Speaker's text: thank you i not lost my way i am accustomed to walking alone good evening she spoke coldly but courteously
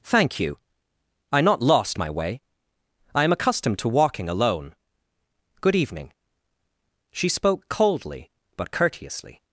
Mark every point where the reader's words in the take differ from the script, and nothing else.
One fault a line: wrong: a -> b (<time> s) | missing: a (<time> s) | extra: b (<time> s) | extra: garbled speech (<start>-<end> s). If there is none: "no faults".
no faults